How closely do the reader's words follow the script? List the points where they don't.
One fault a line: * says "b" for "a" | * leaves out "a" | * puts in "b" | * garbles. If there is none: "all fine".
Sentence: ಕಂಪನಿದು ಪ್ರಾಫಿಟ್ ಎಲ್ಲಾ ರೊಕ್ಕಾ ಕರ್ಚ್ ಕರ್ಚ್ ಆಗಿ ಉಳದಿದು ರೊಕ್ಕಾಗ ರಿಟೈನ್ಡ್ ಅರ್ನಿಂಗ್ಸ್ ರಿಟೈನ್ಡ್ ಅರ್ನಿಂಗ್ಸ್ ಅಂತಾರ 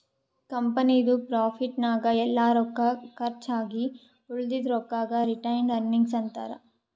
* puts in "ನಾಗ್"
* leaves out "ಕರ್ಚ್"
* leaves out "ರಿಟೈನ್ಡ್ ಅರ್ನಿಂಗ್ಸ್"